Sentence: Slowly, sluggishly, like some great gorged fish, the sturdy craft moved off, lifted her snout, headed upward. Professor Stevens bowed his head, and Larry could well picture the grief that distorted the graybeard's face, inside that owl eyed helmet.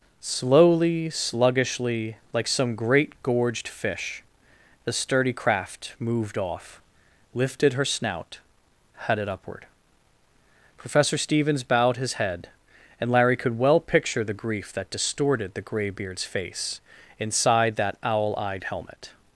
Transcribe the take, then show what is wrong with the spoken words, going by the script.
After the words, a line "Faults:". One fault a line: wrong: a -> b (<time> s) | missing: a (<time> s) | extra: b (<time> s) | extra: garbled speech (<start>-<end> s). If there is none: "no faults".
Slowly, sluggishly, like some great gorged fish, the sturdy craft moved off, lifted her snout, headed upward. Professor Stevens bowed his head, and Larry could well picture the grief that distorted the graybeard's face, inside that owl eyed helmet.
Faults:
no faults